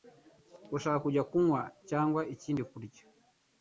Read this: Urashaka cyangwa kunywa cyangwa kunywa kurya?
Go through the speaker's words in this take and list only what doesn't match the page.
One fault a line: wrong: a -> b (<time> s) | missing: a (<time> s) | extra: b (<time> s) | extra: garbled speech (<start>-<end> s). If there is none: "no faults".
wrong: cyangwa -> kujya (1.1 s)
wrong: kunywa -> ikindi (2.3 s)